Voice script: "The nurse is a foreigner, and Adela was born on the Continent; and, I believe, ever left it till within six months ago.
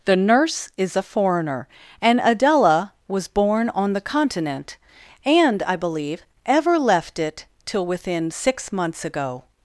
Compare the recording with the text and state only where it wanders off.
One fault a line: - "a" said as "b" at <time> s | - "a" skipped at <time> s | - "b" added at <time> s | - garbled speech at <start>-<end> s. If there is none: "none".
none